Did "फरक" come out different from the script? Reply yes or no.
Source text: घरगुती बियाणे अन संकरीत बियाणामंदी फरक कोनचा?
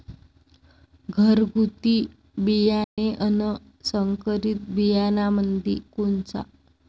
yes